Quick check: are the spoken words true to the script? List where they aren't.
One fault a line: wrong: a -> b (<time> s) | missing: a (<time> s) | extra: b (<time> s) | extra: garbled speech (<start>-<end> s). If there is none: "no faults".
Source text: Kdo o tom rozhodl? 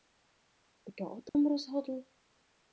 no faults